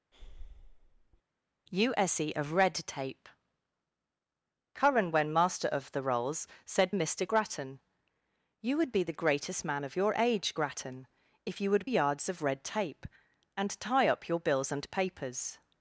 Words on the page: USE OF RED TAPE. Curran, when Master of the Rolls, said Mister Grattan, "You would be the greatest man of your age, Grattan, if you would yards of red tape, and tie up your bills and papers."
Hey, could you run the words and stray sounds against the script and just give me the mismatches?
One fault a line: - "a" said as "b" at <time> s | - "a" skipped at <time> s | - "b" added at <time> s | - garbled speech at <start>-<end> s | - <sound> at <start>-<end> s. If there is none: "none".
- breath at 0.1-1.2 s